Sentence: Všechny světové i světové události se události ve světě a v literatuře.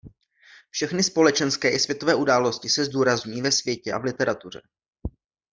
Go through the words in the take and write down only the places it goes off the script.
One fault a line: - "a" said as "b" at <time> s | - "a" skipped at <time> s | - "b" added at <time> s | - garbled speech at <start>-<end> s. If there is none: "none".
- "světové" said as "společenské" at 1.0 s
- "události" said as "zdůrazňují" at 2.9 s